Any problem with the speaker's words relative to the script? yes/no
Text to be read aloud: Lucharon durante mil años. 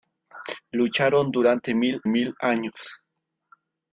yes